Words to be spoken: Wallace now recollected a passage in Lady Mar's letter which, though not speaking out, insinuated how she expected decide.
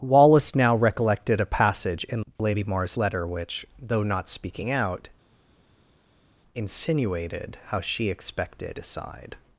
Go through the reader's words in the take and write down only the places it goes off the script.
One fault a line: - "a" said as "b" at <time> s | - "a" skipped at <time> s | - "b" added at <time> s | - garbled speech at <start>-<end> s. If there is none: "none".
none